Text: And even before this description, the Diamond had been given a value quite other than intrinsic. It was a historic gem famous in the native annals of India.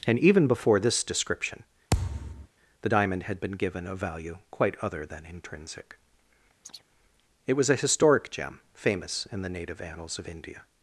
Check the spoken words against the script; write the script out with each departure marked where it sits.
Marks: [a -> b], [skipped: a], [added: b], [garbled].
And even before this description, the Diamond had been given a value quite other than intrinsic. It was a historic gem famous in the native annals of India.